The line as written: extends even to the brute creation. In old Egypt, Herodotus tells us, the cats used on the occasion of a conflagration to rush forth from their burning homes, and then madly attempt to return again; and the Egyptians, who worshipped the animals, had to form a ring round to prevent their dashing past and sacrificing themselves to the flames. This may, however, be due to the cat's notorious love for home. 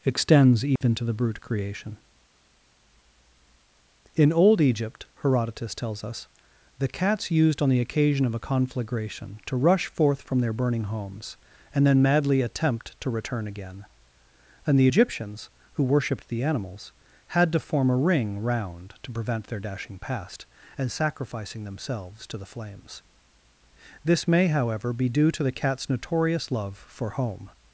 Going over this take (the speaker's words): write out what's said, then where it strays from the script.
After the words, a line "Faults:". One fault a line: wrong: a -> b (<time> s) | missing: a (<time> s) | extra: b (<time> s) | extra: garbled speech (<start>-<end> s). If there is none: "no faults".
extends even to the brute creation. In old Egypt, Herodotus tells us, the cats used on the occasion of a conflagration to rush forth from their burning homes, and then madly attempt to return again; and the Egyptians, who worshipped the animals, had to form a ring round to prevent their dashing past and sacrificing themselves to the flames. This may, however, be due to the cat's notorious love for home.
Faults:
no faults